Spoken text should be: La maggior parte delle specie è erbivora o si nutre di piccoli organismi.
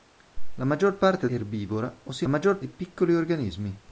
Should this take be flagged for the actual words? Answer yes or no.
yes